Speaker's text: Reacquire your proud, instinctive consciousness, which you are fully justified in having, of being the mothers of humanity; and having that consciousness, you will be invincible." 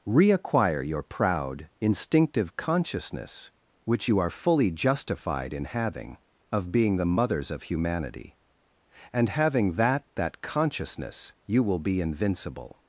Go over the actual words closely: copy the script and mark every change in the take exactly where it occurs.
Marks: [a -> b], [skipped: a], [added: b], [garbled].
Reacquire your proud, instinctive consciousness, which you are fully justified in having, of being the mothers of humanity; and having that [added: that] consciousness, you will be invincible."